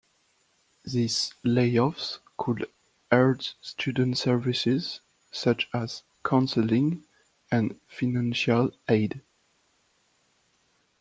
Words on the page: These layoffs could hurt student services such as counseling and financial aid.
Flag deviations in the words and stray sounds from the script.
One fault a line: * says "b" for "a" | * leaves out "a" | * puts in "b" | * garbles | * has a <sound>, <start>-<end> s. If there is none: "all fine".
all fine